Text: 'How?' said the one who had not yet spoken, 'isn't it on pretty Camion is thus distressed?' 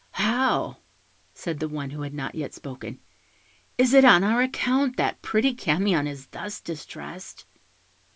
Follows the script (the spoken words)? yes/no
no